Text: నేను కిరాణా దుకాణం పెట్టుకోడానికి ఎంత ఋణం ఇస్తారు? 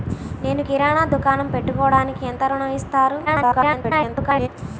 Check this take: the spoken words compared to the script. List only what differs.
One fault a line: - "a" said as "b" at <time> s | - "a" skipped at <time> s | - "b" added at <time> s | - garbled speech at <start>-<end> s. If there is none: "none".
- garbled speech at 3.3-4.5 s